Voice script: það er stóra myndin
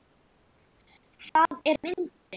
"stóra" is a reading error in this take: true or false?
true